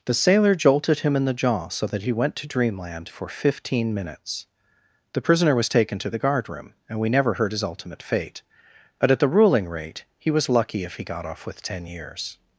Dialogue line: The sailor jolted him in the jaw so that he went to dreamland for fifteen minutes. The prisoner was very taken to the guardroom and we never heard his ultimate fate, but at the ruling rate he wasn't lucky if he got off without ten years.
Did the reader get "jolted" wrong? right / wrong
right